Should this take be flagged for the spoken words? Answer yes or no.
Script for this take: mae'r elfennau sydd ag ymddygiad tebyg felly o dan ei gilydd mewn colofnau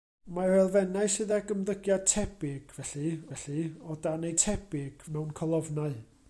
yes